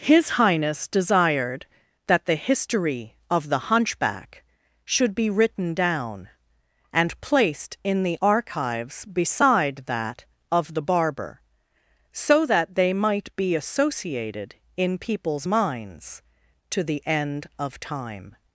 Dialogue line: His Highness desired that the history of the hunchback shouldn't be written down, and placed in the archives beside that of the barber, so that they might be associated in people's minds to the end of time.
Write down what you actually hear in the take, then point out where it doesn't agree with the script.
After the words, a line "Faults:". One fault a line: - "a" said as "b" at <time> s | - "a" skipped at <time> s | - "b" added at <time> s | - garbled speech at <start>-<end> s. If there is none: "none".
His Highness desired that the history of the hunchback should be written down, and placed in the archives beside that of the barber, so that they might be associated in people's minds to the end of time.
Faults:
- "shouldn't" said as "should" at 4.8 s